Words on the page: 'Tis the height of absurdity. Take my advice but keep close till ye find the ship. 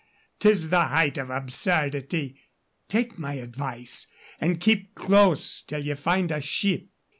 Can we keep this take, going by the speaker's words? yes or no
no